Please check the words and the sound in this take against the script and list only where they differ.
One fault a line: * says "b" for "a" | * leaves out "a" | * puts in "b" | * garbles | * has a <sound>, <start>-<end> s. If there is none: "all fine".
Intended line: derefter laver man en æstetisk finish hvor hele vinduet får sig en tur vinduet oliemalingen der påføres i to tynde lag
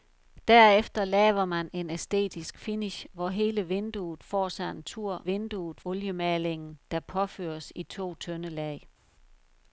all fine